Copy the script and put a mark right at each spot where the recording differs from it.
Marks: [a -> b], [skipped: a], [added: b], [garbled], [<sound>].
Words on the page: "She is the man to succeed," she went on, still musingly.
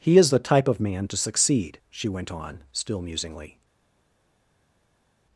["She -> He] is the [added: type of] man to succeed," she went on, still musingly.